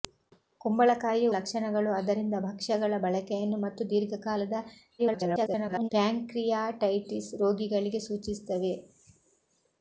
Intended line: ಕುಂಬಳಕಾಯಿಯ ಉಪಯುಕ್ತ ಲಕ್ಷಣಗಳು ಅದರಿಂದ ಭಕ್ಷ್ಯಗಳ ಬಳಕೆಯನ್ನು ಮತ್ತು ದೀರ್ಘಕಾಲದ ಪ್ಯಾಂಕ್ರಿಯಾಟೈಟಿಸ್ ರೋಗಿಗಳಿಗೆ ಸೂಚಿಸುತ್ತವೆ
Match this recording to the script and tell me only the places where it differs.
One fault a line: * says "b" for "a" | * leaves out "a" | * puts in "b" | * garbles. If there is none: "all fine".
* leaves out "ಉಪಯುಕ್ತ"
* garbles